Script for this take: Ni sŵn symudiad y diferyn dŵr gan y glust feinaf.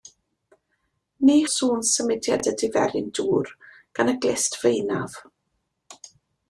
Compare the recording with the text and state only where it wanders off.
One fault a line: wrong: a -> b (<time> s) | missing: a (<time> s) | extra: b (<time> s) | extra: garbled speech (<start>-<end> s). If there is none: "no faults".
no faults